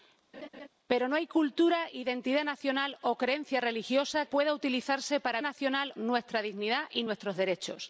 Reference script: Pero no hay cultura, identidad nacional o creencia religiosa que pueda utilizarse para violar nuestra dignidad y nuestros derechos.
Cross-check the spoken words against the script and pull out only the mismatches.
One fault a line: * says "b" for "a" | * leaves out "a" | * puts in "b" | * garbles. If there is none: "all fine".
* leaves out "que"
* says "nacional" for "violar"